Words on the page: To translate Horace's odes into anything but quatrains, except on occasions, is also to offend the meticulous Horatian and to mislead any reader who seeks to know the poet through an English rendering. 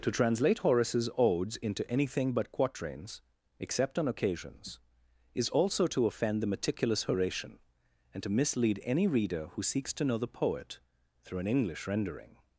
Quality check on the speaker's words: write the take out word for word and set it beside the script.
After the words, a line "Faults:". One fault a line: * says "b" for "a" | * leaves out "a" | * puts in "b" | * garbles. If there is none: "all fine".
To translate Horace's odes into anything but quatrains, except on occasions, is also to offend the meticulous Horatian and to mislead any reader who seeks to know the poet through an English rendering.
Faults:
all fine